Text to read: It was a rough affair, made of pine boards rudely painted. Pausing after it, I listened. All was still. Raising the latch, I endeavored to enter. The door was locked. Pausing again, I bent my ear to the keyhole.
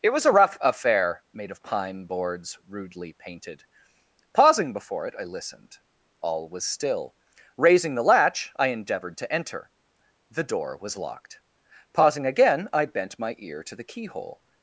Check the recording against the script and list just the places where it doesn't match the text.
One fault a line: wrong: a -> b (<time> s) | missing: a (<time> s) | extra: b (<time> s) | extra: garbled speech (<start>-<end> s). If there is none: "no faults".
wrong: after -> before (4.7 s)